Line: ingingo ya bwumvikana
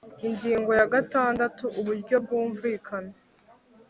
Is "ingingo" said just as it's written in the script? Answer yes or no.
yes